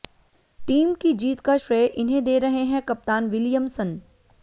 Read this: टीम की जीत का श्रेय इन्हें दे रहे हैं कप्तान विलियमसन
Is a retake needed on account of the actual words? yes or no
no